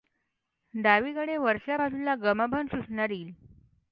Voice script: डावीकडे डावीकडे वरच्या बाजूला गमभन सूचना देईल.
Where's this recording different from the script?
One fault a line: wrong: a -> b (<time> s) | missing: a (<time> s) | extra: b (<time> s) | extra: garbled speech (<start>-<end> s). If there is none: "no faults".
missing: डावीकडे (1.4 s)